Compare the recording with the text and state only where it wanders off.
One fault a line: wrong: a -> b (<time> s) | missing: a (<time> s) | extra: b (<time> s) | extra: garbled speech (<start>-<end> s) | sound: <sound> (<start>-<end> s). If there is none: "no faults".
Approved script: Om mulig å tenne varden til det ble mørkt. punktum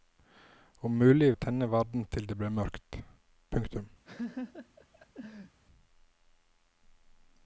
sound: laugh (4.0-5.6 s)